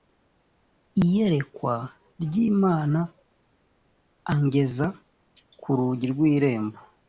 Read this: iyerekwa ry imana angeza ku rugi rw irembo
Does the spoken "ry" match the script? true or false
true